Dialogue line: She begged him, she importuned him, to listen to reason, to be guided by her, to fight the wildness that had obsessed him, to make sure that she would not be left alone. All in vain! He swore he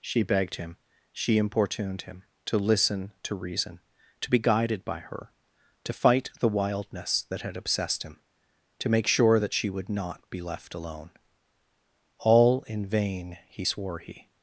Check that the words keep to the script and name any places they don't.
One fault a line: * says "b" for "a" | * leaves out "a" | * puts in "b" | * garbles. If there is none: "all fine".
all fine